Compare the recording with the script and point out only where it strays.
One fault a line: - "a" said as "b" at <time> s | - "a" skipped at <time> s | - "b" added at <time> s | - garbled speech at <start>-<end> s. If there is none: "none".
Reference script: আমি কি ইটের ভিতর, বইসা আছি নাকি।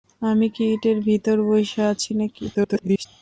- garbled speech at 2.5-3.1 s